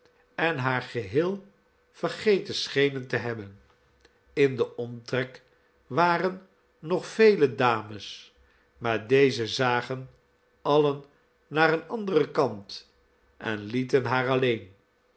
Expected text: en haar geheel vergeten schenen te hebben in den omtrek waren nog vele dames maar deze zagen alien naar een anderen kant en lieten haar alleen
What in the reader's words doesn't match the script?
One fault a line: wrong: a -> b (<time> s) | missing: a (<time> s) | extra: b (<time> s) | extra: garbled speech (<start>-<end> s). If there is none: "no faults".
no faults